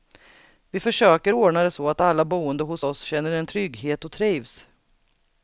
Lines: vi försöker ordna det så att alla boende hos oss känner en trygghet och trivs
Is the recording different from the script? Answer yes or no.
no